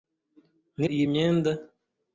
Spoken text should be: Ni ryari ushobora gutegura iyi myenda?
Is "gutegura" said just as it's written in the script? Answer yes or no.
no